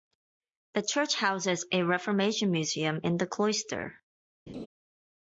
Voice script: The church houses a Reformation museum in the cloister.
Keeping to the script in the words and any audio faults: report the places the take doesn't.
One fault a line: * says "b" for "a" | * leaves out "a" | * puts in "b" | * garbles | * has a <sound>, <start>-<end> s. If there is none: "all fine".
* has a laugh, 4.5-4.7 s